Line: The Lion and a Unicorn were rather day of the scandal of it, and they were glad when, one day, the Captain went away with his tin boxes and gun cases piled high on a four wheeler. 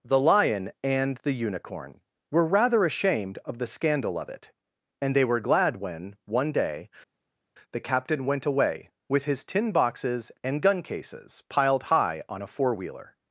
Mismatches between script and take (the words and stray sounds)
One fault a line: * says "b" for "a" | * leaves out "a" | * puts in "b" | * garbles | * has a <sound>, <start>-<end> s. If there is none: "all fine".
* says "the" for "a"
* says "ashamed" for "day"